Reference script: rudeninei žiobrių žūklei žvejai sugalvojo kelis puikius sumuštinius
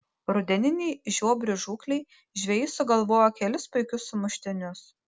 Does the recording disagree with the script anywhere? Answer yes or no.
no